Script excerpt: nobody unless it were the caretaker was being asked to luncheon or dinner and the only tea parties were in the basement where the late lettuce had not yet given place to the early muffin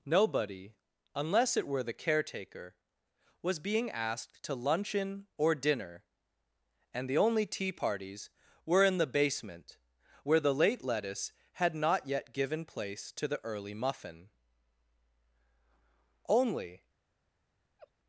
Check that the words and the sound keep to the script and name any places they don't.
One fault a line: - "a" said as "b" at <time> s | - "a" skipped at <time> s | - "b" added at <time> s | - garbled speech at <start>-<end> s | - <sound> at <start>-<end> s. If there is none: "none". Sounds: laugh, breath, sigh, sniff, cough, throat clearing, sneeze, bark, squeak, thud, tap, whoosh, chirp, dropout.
- "only" added at 16.3 s
- laugh at 17.8-17.9 s